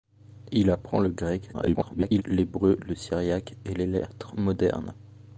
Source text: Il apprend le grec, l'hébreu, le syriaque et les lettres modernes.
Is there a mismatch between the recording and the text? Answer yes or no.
yes